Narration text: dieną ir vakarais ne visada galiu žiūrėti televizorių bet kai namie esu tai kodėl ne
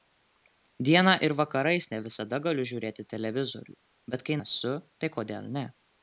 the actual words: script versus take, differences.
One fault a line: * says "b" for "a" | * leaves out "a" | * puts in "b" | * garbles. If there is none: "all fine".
* leaves out "namie"